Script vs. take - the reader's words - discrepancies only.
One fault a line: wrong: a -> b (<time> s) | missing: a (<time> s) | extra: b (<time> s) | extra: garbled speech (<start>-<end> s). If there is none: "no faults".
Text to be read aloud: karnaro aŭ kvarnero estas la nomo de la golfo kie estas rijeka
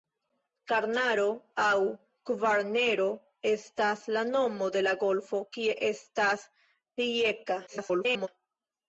extra: garbled speech (7.7-8.3 s)